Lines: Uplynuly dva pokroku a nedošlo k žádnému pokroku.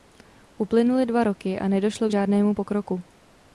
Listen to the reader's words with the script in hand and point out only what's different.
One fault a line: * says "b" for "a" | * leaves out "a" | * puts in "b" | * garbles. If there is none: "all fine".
* says "roky" for "pokroku"